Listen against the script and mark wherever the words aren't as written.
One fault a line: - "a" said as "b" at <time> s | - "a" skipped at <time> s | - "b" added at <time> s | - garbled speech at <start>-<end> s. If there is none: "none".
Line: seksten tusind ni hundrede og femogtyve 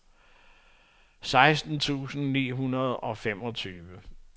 none